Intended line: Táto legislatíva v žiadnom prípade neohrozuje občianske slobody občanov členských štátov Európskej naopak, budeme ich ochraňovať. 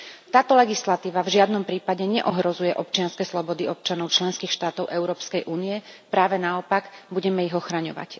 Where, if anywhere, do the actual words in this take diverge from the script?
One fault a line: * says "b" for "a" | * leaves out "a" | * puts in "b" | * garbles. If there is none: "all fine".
* puts in "únie práve"